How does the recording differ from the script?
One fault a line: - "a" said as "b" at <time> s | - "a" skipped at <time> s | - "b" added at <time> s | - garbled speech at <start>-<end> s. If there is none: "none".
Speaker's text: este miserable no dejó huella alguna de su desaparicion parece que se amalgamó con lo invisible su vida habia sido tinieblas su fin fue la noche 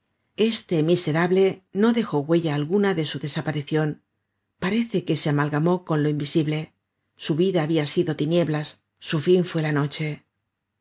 none